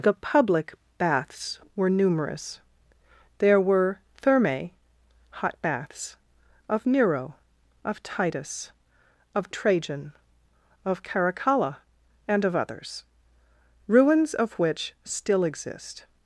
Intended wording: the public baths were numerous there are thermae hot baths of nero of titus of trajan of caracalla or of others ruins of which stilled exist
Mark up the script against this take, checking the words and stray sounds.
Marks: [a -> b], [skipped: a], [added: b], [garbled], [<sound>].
the public baths were numerous there [are -> were] thermae hot baths of nero of titus of trajan of caracalla [or -> and] of others ruins of which [stilled -> still] exist